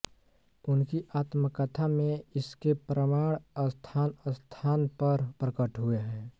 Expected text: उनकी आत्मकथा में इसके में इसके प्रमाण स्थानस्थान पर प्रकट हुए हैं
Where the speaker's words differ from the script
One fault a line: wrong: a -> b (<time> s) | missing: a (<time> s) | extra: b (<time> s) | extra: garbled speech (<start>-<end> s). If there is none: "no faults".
missing: में इसके (2.7 s)